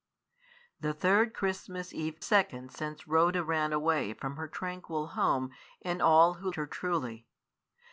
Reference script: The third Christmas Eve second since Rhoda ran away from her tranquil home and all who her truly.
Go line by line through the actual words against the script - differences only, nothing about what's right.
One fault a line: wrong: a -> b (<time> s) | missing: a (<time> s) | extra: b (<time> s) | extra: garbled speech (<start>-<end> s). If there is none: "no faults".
no faults